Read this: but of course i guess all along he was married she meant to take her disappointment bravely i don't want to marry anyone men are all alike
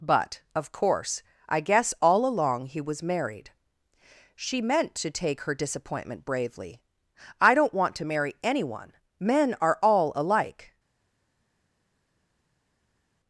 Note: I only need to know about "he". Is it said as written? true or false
true